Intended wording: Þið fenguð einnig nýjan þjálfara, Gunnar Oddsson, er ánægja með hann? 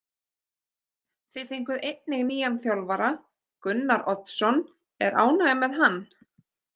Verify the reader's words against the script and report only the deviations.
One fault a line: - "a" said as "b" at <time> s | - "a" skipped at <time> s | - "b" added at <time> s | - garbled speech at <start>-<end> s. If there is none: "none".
none